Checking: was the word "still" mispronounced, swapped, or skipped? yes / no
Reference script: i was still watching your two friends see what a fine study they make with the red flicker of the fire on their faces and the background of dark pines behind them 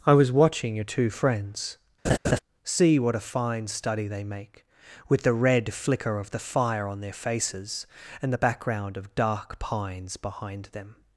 yes